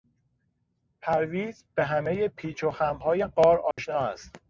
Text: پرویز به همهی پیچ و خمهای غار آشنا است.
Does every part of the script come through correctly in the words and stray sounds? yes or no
no